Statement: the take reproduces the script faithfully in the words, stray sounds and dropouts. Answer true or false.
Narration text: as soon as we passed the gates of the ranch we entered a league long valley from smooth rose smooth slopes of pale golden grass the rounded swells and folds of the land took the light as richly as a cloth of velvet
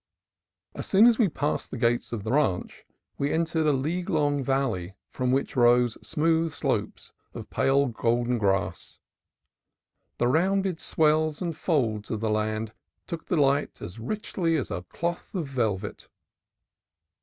false